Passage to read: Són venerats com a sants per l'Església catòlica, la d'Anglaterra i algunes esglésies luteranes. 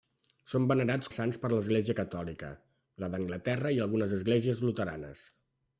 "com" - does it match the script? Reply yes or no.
no